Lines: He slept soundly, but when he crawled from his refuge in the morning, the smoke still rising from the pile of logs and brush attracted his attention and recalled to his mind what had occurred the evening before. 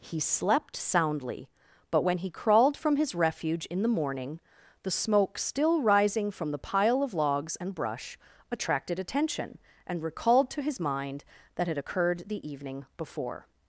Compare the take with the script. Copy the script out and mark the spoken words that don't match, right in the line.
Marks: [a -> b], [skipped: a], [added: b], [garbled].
He slept soundly, but when he crawled from his refuge in the morning, the smoke still rising from the pile of logs and brush attracted [skipped: his] attention and recalled to his mind [what -> that] had occurred the evening before.